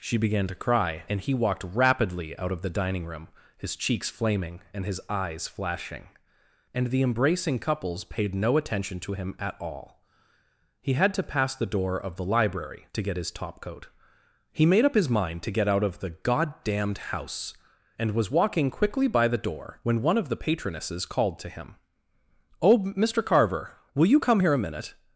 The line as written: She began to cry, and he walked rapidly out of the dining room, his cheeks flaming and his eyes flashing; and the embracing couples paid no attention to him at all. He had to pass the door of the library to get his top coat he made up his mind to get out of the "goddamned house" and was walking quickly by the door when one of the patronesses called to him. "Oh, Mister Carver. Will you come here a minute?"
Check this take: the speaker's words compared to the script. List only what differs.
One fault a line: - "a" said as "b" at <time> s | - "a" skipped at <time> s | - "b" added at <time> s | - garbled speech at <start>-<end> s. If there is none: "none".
none